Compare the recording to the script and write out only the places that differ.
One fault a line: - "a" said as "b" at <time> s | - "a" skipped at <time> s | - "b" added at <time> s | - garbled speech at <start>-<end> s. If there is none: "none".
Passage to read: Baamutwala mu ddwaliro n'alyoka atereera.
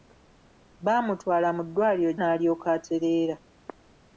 none